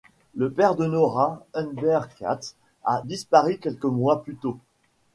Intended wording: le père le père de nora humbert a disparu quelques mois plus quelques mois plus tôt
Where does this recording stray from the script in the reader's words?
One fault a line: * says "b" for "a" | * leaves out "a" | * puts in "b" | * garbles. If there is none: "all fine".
* leaves out "le père"
* puts in "katz"
* leaves out "quelques mois plus"